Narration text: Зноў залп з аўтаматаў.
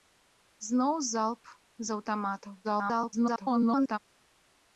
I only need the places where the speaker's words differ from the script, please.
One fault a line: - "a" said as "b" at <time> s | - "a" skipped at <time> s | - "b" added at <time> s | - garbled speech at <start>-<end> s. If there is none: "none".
- garbled speech at 2.6-4.0 s